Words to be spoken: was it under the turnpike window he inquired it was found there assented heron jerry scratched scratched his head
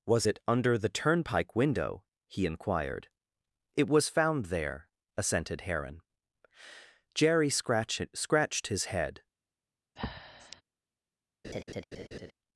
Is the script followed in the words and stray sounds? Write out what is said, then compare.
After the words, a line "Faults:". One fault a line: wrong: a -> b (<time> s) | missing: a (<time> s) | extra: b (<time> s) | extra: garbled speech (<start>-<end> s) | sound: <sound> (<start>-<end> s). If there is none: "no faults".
was it under the turnpike window he inquired it was found there assented heron jerry scratched scratched his head
Faults:
sound: breath (10.0-10.6 s)
sound: laugh (11.4-12.3 s)